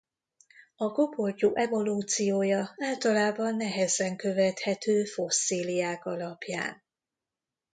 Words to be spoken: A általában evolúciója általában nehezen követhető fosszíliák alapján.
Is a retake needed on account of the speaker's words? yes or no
yes